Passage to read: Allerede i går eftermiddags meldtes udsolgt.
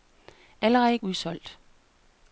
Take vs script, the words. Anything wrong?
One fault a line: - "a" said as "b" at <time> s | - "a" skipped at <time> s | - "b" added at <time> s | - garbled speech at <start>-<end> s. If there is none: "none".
- "går eftermiddags meldtes" skipped at 1.0 s